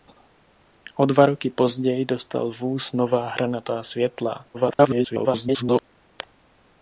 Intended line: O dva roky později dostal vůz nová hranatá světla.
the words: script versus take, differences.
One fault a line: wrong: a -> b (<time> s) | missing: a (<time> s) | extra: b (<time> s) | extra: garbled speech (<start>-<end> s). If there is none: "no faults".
extra: garbled speech (4.5-5.8 s)